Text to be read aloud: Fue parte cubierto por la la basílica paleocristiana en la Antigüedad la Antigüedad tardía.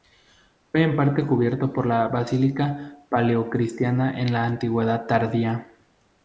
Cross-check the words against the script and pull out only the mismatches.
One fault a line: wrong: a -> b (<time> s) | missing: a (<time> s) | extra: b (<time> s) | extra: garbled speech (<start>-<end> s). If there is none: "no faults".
extra: en (0.8 s)
missing: la (2.1 s)
missing: la Antigüedad (5.1 s)